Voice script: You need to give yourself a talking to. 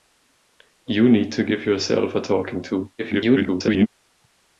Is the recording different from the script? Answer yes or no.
yes